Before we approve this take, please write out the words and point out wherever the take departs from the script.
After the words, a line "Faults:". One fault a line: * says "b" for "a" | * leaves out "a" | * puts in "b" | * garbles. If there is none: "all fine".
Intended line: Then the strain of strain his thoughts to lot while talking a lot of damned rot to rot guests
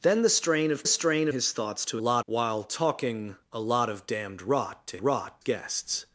Then the strain of strain his thoughts to lot while talking a lot of damned rot to rot guests
Faults:
all fine